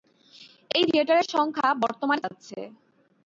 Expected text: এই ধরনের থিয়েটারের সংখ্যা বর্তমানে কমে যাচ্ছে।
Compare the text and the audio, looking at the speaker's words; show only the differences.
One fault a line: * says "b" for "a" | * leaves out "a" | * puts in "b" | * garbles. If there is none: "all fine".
* leaves out "ধরনের"
* leaves out "কমে"